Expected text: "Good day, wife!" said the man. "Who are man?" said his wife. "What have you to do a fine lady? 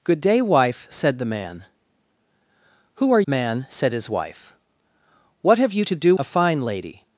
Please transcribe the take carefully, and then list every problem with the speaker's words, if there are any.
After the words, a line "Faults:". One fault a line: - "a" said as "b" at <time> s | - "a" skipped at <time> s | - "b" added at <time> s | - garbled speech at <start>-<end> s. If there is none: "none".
"Good day, wife!" said the man. "Who are man?" said his wife. "What have you to do a fine lady?
Faults:
none